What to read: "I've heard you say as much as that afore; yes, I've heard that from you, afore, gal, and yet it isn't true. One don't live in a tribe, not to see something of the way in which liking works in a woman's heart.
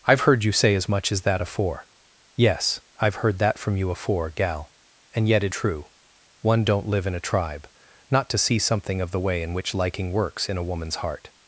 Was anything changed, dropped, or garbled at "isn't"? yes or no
yes